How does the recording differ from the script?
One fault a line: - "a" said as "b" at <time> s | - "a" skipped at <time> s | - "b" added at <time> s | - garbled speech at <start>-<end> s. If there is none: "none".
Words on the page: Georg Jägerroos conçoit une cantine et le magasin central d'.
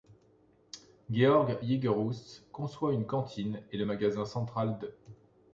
none